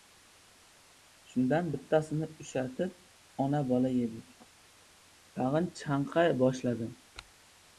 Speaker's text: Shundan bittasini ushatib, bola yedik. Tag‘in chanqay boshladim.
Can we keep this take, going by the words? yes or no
no